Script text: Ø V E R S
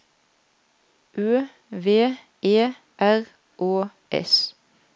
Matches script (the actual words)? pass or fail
fail